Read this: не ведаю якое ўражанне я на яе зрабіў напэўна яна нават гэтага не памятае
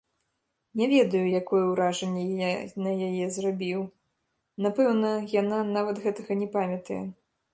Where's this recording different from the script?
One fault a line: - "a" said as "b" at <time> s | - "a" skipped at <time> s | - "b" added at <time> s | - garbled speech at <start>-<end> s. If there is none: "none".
none